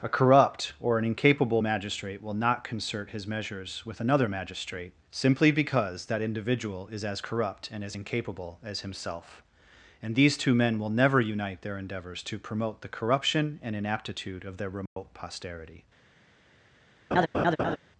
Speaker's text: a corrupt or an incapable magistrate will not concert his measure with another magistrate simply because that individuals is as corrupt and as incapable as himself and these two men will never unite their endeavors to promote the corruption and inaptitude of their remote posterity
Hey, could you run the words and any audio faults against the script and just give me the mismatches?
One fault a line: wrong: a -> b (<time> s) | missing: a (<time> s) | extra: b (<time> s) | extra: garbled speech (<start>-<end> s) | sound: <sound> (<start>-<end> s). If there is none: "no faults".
wrong: measure -> measures (3.3 s)
wrong: individuals -> individual (6.2 s)
sound: dropout (14.9-15.0 s)
sound: laugh (17.1-17.8 s)